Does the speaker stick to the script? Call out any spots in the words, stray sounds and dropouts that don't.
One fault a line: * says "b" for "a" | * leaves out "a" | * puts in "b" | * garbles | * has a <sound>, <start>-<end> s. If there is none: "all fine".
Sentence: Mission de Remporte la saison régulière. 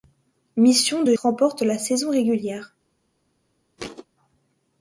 * has a thud, 3.8-4.1 s